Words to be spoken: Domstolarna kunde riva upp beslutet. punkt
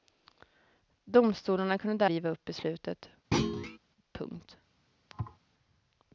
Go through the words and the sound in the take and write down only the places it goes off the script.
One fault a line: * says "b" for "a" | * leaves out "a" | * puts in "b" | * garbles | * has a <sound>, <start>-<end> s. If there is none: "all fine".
* has a thud, 3.3-3.8 s
* has a thud, 5.1-5.4 s